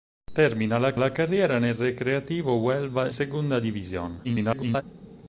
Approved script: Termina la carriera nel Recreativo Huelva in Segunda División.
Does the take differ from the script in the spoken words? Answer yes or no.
yes